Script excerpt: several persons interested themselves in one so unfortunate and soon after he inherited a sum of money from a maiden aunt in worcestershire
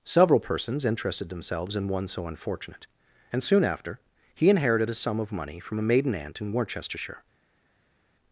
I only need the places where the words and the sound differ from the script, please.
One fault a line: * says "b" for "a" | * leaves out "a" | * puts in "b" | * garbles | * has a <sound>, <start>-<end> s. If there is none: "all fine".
all fine